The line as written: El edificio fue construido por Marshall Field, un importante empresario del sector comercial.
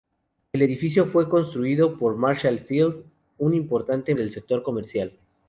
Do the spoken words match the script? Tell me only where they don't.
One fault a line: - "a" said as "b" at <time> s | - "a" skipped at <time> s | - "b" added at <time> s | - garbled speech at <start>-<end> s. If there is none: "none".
- "empresario" skipped at 4.1 s